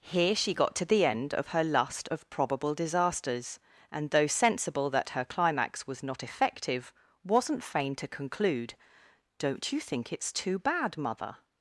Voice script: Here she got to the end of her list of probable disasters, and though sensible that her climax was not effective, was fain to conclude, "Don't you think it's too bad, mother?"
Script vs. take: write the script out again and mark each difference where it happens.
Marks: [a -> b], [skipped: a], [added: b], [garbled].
Here she got to the end of her [list -> lust] of probable disasters, and though sensible that her climax was not effective, [was -> wasn't] fain to conclude, "Don't you think it's too bad, mother?"